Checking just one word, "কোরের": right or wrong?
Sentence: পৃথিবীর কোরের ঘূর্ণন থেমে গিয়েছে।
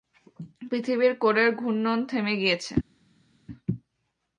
right